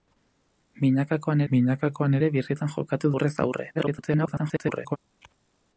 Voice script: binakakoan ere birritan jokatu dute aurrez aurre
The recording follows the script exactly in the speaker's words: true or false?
false